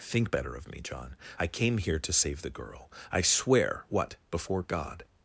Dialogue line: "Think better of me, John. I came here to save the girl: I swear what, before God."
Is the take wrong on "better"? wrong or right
right